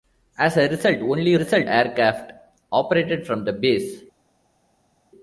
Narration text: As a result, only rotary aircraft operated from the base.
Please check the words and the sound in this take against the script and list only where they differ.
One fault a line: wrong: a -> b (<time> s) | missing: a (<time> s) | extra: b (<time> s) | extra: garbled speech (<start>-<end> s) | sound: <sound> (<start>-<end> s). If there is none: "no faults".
wrong: rotary -> result (1.3 s)